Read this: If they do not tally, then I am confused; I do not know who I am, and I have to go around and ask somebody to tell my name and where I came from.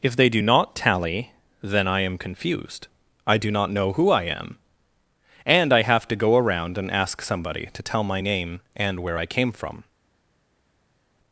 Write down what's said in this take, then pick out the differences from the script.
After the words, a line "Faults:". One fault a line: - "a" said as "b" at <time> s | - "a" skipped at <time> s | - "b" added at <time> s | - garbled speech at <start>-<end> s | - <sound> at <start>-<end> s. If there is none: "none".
If they do not tally, then I am confused; I do not know who I am, and I have to go around and ask somebody to tell my name and where I came from.
Faults:
none